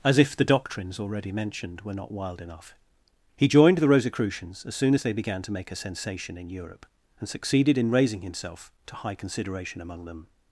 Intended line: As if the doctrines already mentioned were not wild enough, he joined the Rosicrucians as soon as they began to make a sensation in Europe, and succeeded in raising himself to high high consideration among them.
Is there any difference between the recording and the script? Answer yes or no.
yes